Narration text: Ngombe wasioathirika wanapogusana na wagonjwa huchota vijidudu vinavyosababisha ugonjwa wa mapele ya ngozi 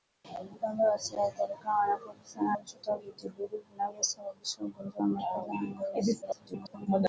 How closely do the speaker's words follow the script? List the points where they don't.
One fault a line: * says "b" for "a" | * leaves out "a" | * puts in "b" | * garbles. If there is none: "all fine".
* leaves out "na wagonjwa"
* garbles